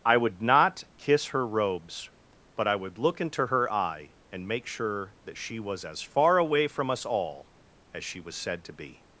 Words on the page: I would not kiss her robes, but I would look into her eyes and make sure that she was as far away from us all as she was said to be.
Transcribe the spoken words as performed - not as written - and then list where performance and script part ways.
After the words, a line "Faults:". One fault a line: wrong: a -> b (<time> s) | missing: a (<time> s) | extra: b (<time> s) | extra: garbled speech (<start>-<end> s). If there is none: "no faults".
I would not kiss her robes, but I would look into her eye and make sure that she was as far away from us all as she was said to be.
Faults:
wrong: eyes -> eye (3.7 s)